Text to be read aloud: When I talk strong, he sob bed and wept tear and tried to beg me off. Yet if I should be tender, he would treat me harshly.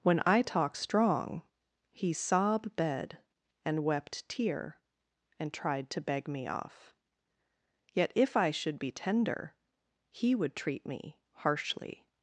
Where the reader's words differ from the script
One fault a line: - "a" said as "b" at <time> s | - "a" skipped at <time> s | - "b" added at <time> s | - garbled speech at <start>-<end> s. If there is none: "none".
none